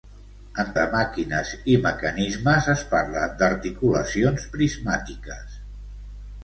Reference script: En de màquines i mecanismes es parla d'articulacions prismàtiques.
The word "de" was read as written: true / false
true